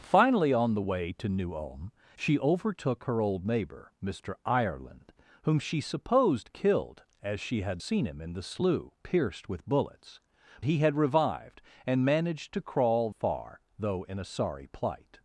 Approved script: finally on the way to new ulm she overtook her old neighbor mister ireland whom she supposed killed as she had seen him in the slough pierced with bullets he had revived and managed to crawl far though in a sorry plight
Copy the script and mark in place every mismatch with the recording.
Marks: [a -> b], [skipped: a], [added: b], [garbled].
finally on the way to new ulm she overtook her old neighbor mister ireland whom she supposed killed as she had seen him in the slough pierced with bullets he had revived and managed to crawl far though in a sorry plight